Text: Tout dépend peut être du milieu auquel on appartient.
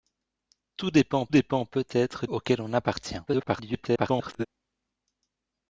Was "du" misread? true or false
true